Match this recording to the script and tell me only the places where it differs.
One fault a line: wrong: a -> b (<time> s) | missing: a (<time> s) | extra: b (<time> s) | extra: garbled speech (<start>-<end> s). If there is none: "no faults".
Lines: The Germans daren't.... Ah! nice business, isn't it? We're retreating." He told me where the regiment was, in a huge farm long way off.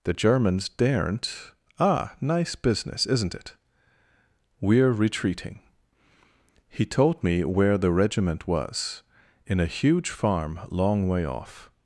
no faults